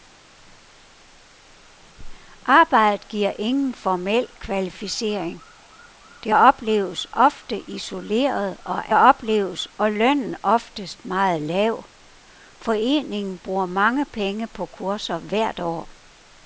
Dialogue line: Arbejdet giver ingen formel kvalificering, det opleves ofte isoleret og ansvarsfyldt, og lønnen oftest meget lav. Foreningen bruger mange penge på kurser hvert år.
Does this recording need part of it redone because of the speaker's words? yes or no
yes